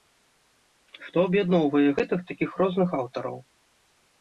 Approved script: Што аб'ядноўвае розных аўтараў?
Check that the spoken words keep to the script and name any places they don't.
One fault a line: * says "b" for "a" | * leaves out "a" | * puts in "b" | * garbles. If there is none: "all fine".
* puts in "гэтых такіх"